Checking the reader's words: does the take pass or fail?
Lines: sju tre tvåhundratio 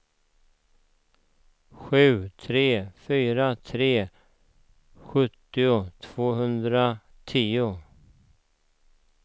fail